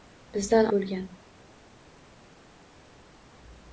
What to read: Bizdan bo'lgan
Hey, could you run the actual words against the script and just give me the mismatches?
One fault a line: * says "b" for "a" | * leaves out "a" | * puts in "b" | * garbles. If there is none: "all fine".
all fine